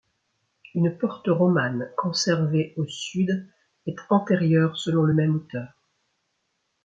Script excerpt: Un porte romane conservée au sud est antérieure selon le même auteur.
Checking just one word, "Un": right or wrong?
wrong